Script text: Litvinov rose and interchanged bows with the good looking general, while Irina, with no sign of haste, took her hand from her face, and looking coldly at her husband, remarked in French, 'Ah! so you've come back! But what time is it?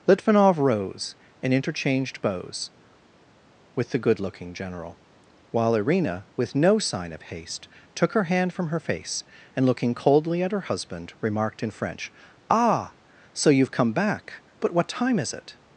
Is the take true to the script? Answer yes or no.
yes